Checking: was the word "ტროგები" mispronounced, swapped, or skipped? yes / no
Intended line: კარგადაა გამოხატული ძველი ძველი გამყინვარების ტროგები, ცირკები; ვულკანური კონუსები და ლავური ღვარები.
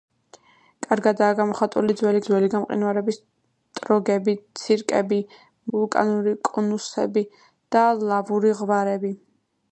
no